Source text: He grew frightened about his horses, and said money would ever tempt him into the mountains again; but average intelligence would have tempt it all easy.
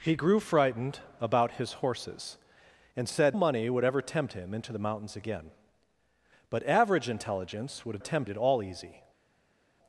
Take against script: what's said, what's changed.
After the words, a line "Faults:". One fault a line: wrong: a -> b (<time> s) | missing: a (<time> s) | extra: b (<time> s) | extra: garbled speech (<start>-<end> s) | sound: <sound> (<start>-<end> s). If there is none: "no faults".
He grew frightened about his horses, and said money would ever tempt him into the mountains again; but average intelligence would have tempt it all easy.
Faults:
no faults